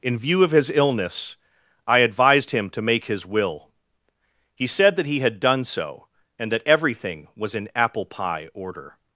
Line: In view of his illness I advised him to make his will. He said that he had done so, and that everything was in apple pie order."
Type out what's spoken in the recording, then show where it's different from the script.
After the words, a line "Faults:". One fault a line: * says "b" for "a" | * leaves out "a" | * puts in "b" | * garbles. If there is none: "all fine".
In view of his illness I advised him to make his will. He said that he had done so, and that everything was in apple pie order."
Faults:
all fine